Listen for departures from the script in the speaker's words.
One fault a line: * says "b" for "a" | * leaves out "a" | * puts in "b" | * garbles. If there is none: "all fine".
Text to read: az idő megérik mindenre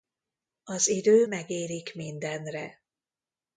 all fine